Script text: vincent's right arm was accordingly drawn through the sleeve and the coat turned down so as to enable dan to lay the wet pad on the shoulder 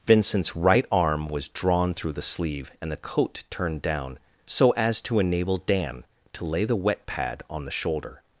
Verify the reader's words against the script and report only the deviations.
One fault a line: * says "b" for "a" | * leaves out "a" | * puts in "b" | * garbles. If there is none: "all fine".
* leaves out "accordingly"